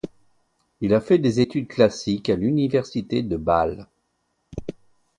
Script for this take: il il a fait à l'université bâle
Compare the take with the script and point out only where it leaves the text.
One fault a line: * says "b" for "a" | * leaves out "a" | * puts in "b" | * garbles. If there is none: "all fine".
* leaves out "il"
* puts in "des études classiques"
* puts in "de"